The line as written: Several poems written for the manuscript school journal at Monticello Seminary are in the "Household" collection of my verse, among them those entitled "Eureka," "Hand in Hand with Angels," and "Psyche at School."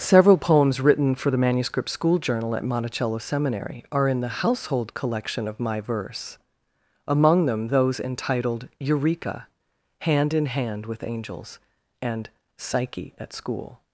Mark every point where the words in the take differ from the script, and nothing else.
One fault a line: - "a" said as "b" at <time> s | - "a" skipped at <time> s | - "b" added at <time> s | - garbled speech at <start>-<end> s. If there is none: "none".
none